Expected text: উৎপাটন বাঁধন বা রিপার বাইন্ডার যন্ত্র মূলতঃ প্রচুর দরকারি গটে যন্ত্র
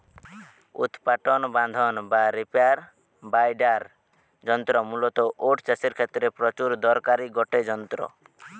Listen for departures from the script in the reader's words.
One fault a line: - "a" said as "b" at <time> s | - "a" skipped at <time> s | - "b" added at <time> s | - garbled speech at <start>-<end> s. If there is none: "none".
- "ওট চাষের ক্ষেত্রে" added at 5.4 s